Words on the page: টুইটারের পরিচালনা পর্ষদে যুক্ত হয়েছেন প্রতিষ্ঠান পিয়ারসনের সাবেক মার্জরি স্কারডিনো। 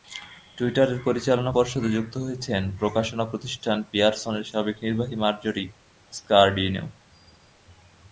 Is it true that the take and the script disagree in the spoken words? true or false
true